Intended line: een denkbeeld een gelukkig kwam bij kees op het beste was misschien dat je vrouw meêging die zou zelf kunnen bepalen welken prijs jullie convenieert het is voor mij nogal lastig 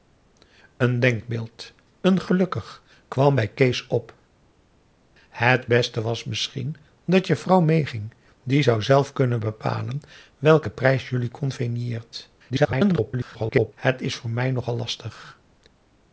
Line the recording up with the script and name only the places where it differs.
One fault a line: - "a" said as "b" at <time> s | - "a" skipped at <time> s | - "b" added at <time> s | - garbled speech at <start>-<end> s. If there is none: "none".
- garbled speech at 12.5-13.7 s